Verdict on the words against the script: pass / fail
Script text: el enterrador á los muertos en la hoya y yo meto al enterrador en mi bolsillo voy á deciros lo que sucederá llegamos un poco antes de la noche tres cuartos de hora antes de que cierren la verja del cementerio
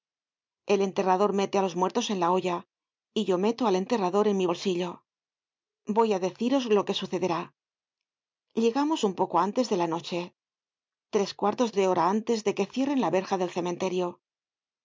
fail